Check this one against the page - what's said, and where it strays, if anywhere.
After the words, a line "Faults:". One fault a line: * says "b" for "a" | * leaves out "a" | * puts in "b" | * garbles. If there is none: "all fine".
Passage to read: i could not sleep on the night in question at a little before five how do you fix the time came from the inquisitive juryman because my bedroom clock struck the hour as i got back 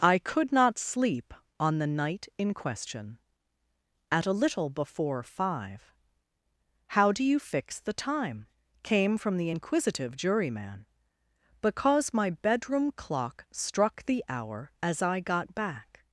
i could not sleep on the night in question at a little before five how do you fix the time came from the inquisitive juryman because my bedroom clock struck the hour as i got back
Faults:
all fine